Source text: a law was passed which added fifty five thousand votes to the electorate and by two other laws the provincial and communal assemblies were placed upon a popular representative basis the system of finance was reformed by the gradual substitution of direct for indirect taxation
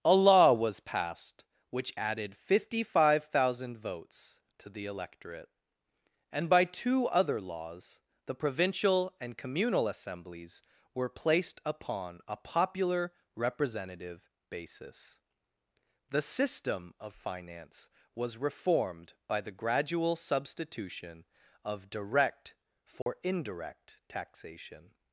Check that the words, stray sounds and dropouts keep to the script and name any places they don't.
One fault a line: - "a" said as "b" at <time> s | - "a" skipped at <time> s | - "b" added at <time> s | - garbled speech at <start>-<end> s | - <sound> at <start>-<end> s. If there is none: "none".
- dropout at 23.0-23.1 s